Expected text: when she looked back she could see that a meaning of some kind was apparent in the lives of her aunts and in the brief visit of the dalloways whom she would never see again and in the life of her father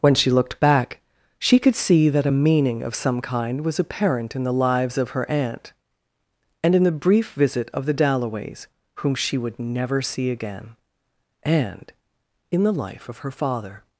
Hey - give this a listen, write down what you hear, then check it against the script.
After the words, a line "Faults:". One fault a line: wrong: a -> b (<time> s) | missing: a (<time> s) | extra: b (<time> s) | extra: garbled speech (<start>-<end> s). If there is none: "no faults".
when she looked back she could see that a meaning of some kind was apparent in the lives of her aunt and in the brief visit of the dalloways whom she would never see again and in the life of her father
Faults:
wrong: aunts -> aunt (5.3 s)